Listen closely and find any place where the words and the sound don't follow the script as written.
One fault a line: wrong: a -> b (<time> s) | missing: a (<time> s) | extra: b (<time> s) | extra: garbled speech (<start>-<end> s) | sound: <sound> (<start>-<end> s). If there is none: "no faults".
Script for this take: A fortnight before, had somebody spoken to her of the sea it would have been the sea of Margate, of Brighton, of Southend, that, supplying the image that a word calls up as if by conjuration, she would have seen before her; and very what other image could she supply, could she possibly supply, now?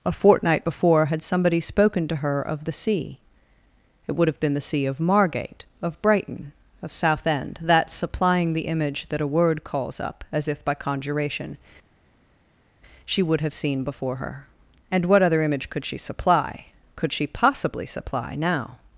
missing: very (15.1 s)